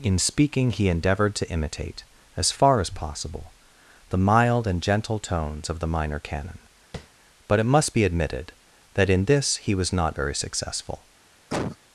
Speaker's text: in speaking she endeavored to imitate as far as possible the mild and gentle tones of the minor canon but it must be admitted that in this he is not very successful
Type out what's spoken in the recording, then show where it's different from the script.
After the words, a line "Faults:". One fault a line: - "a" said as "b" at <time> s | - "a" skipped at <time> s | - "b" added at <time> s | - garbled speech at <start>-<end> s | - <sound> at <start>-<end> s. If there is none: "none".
in speaking he endeavored to imitate as far as possible the mild and gentle tones of the minor canon but it must be admitted that in this he was not very successful
Faults:
- "she" said as "he" at 0.7 s
- tap at 6.9-7.1 s
- "is" said as "was" at 9.7 s
- cough at 11.5-11.8 s